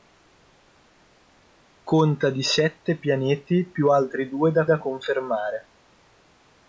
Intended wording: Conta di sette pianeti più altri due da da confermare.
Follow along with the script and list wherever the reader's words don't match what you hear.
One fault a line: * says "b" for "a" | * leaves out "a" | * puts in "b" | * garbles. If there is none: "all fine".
all fine